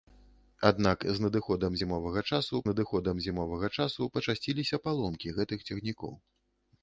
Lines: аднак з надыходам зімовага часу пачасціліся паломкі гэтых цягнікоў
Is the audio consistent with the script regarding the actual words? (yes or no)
no